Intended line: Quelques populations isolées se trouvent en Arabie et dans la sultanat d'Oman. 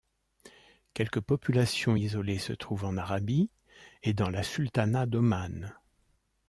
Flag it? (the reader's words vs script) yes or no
no